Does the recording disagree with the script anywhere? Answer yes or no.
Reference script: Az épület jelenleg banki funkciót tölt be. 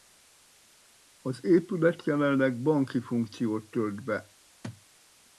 no